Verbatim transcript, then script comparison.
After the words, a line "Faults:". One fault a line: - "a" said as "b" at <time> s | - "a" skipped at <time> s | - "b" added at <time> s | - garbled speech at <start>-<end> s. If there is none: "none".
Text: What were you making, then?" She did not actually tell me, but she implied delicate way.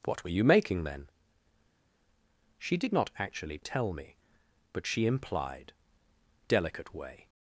What were you making, then?" She did not actually tell me, but she implied delicate way.
Faults:
none